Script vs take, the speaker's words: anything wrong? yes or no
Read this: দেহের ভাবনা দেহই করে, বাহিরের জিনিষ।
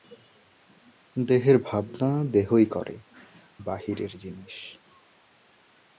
no